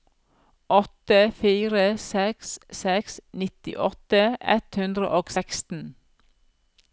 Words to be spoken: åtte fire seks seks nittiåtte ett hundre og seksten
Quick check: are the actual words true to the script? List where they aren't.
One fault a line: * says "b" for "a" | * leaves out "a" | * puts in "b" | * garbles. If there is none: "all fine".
all fine